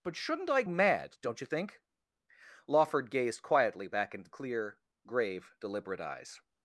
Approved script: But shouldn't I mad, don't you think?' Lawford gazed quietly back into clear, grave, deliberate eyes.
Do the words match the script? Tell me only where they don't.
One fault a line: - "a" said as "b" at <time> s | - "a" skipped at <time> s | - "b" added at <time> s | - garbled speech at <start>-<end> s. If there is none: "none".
none